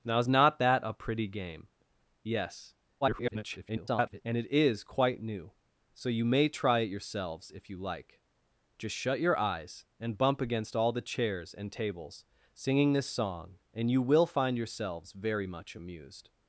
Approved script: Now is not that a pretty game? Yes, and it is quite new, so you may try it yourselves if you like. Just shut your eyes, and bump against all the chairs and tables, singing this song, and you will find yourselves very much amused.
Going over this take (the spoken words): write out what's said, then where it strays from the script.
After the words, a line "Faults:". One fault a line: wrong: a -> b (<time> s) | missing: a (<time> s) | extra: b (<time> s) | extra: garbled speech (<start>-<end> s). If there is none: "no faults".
Now is not that a pretty game? Yes, [garbled] and it is quite new, so you may try it yourselves if you like. Just shut your eyes, and bump against all the chairs and tables, singing this song, and you will find yourselves very much amused.
Faults:
extra: garbled speech (3.0-4.2 s)